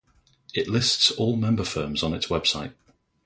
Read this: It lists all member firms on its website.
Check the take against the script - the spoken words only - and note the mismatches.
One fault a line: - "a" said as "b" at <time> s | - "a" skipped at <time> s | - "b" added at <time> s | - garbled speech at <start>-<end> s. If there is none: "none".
none